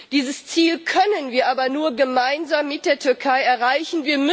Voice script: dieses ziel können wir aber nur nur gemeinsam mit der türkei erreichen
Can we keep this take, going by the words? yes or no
no